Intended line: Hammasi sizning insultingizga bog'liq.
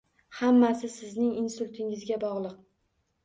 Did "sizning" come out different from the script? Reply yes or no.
no